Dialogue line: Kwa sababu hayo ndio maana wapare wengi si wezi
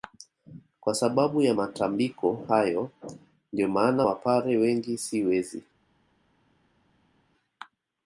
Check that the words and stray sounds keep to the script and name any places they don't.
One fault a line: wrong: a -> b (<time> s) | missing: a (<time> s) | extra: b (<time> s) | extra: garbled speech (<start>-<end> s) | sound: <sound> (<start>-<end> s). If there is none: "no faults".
extra: ya matambiko (1.4 s)